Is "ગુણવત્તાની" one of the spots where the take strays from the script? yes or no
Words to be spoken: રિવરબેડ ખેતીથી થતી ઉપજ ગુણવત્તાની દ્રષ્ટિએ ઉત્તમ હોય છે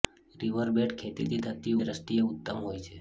yes